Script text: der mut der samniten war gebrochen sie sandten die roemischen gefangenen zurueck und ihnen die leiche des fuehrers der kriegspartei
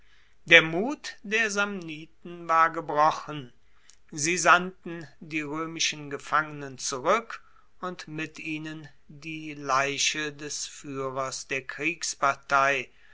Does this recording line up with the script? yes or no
no